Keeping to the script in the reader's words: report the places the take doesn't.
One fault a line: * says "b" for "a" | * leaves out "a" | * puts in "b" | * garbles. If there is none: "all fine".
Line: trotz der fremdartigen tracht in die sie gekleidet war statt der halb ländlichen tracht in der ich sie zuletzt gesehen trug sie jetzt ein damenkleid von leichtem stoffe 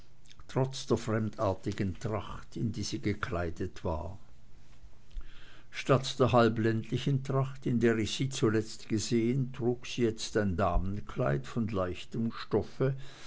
all fine